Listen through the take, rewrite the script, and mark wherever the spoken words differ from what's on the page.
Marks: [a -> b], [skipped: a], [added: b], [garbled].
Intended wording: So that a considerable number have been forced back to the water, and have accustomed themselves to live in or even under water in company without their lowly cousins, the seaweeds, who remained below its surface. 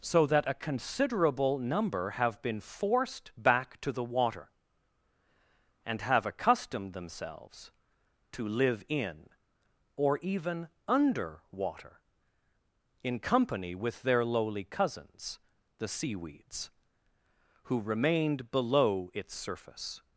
So that a considerable number have been forced back to the water, and have accustomed themselves to live in or even under water in company [without -> with] their lowly cousins, the seaweeds, who remained below its surface.